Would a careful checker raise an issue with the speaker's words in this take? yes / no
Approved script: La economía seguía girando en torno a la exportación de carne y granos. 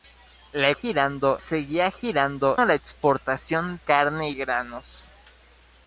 yes